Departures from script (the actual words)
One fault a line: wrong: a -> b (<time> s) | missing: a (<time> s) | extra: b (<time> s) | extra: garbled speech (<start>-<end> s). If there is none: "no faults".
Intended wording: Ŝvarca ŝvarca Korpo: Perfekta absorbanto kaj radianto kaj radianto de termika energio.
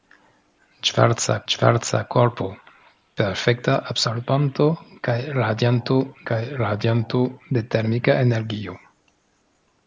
no faults